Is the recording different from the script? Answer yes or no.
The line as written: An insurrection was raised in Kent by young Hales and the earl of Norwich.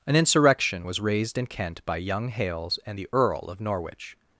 no